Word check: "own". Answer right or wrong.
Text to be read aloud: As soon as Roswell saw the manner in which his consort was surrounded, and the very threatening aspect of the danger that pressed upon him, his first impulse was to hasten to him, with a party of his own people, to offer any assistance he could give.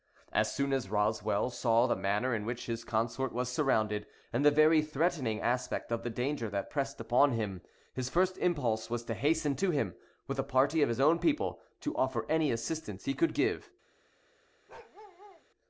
right